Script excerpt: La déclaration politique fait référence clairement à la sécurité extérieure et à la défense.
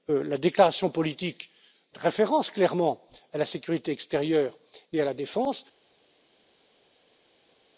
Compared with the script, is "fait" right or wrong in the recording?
wrong